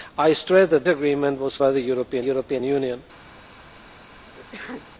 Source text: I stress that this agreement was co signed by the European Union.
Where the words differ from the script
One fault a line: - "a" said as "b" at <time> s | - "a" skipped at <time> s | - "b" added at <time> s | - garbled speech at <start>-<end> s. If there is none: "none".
- "this" skipped at 0.9 s
- "co signed" skipped at 1.6 s
- "European" added at 2.2 s